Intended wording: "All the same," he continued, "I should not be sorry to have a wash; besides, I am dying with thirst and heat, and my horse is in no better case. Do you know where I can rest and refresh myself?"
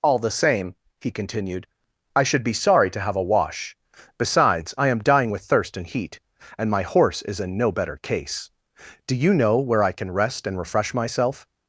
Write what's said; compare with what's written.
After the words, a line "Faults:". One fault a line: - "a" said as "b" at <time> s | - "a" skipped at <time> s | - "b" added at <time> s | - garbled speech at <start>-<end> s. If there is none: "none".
"All the same," he continued, "I should be sorry to have a wash; besides, I am dying with thirst and heat, and my horse is in no better case. Do you know where I can rest and refresh myself?"
Faults:
- "not" skipped at 2.4 s